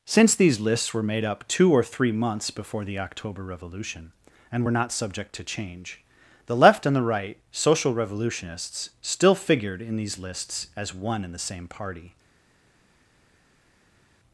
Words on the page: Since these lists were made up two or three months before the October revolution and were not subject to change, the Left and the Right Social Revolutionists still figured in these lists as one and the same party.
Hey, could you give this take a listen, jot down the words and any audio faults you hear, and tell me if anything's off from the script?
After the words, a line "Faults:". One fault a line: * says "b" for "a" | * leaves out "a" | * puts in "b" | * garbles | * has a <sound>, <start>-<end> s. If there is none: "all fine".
Since these lists were made up two or three months before the October revolution and were not subject to change, the Left and the Right Social Revolutionists still figured in these lists as one and the same party.
Faults:
all fine